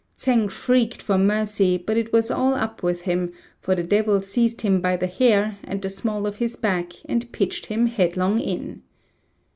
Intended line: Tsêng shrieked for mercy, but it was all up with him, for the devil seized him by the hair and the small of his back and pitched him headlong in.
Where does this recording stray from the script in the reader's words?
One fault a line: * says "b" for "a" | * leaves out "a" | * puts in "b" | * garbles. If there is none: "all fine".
all fine